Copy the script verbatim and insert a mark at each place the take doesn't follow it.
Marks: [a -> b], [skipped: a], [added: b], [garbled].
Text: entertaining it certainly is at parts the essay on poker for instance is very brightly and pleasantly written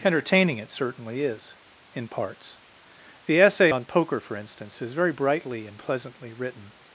entertaining it certainly is [at -> in] parts the essay on poker for instance is very brightly and pleasantly written